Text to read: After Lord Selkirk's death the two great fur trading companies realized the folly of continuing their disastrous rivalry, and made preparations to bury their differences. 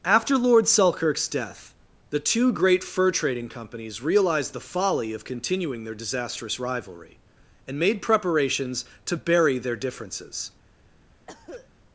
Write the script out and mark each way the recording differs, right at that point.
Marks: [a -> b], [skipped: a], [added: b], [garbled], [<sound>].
After Lord Selkirk's death the two great fur trading companies realized the folly of continuing their disastrous rivalry, and made preparations to bury their differences. [cough]